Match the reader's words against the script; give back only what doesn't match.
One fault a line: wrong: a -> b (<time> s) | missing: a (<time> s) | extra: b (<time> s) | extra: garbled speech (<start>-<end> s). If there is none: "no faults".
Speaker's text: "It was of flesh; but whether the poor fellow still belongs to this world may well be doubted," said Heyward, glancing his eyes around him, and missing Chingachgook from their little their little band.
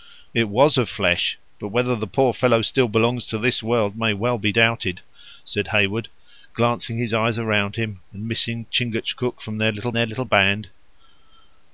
no faults